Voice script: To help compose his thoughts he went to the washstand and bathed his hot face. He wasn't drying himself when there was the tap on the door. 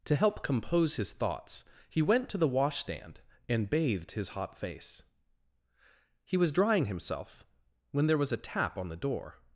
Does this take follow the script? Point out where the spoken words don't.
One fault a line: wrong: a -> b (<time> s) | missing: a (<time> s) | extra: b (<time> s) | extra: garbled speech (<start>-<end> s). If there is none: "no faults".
wrong: wasn't -> was (6.4 s)
wrong: the -> a (8.3 s)